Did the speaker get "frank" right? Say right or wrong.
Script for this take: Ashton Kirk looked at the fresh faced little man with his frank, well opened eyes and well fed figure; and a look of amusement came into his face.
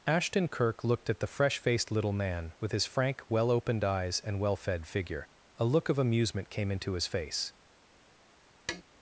right